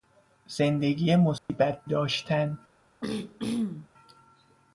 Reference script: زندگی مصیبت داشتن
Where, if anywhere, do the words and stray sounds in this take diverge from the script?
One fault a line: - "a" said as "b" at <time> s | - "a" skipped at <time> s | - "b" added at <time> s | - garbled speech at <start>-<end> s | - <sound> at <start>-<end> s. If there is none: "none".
- dropout at 1.4-1.5 s
- throat clearing at 3.0-3.9 s